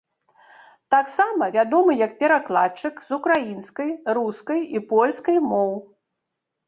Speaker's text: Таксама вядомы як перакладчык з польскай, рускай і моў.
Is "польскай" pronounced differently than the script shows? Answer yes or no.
yes